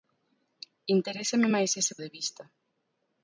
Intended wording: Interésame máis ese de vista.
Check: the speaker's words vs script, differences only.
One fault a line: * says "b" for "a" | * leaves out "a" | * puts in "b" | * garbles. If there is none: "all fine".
all fine